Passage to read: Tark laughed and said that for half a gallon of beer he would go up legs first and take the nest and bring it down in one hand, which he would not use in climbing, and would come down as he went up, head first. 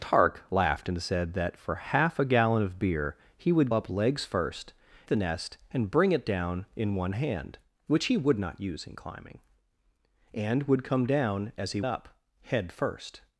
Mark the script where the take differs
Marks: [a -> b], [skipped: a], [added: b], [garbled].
Tark laughed and said that for half a gallon of beer he would [skipped: go] up legs first [skipped: and take] the nest and bring it down in one hand, which he would not use in climbing, and would come down as he [skipped: went] up, head first.